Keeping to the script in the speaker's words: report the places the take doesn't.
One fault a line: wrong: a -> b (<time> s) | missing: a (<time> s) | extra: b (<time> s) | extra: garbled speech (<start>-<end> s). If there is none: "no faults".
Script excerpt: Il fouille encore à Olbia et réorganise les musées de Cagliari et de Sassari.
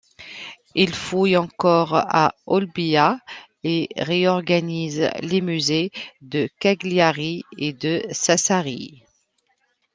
no faults